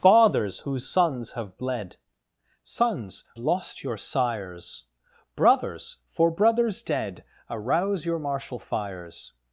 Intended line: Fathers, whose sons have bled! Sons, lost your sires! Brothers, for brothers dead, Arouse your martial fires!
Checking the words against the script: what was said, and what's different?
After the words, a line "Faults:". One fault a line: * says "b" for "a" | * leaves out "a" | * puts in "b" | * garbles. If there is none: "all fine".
Fathers, whose sons have bled! Sons, lost your sires! Brothers, for brothers dead, Arouse your martial fires!
Faults:
all fine